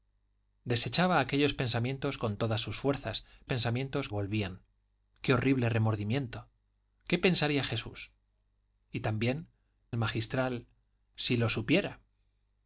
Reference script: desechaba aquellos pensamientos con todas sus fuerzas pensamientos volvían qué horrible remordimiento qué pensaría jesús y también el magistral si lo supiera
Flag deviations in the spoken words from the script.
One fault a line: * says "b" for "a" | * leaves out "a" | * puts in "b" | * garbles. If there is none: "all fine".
all fine